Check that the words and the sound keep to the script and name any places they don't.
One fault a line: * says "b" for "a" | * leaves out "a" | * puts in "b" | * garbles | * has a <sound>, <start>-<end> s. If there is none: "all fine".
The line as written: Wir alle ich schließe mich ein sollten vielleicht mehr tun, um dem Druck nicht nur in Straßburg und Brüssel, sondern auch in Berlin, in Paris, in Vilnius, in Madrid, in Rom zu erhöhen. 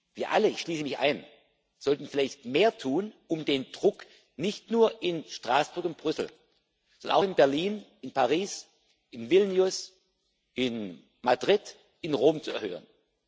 * says "den" for "dem"